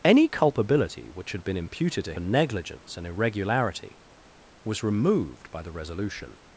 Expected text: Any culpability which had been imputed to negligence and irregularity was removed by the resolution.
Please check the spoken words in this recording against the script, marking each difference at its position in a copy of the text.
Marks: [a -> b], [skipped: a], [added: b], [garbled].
Any culpability which had been imputed to negligence and irregularity was removed by the resolution.